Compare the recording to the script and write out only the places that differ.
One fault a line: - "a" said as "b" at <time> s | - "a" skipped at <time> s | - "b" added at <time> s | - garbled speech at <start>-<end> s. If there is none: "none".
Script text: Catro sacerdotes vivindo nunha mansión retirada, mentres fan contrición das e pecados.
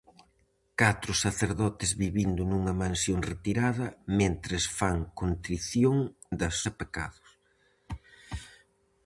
none